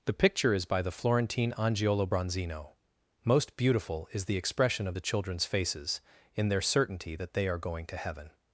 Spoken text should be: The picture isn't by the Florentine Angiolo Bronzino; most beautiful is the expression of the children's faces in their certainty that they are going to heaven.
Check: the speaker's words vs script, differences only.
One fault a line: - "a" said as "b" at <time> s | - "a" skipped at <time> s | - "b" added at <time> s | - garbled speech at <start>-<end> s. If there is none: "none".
- "isn't" said as "is" at 0.5 s